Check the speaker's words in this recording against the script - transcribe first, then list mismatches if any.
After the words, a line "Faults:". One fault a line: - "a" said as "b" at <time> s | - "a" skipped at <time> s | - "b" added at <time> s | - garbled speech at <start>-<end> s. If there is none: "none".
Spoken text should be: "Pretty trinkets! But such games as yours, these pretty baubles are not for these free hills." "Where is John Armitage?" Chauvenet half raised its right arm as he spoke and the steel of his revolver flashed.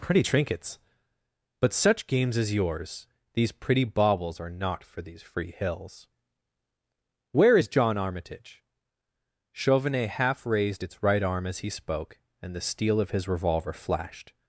"Pretty trinkets! But such games as yours, these pretty baubles are not for these free hills." "Where is John Armitage?" Chauvenet half raised its right arm as he spoke and the steel of his revolver flashed.
Faults:
none